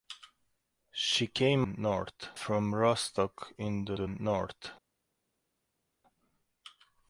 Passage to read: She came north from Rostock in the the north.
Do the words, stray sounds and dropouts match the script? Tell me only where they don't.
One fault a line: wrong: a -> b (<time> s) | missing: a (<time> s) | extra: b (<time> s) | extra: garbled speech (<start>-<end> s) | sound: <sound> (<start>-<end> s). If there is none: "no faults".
no faults